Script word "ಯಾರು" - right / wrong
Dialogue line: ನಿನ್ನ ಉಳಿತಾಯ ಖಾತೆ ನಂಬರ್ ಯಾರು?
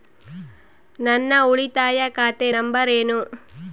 wrong